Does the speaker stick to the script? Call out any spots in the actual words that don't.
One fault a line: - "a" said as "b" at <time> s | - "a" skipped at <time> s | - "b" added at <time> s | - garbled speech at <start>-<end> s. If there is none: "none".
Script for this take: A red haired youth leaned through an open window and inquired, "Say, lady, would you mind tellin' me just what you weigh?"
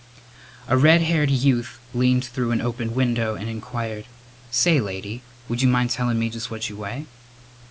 none